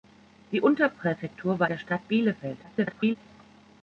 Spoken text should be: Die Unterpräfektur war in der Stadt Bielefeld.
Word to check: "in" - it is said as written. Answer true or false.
false